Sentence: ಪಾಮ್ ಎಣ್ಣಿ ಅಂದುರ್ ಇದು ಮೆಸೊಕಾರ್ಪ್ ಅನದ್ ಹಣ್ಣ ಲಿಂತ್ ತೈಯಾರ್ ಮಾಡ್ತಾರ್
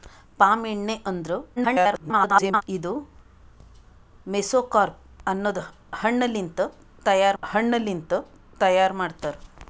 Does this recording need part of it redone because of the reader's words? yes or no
yes